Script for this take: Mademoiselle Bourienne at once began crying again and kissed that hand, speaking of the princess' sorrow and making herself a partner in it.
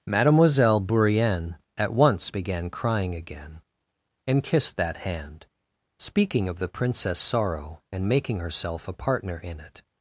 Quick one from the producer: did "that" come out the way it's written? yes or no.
yes